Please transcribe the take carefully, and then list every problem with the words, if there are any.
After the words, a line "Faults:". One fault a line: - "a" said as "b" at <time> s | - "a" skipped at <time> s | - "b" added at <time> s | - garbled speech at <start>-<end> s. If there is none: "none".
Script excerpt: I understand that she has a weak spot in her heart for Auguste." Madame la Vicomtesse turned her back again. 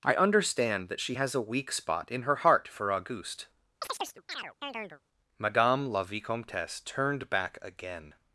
I understand that she has a weak spot in her heart for Auguste." Madame la Vicomtesse turned back again.
Faults:
- "her" skipped at 7.3 s